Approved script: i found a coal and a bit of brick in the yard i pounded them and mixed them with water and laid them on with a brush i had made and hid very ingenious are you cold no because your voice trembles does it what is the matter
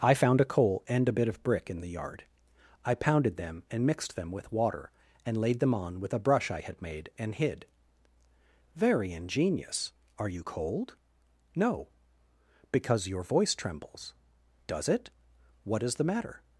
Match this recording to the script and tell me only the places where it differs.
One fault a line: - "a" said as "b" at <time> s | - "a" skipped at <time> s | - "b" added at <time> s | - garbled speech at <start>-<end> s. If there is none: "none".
none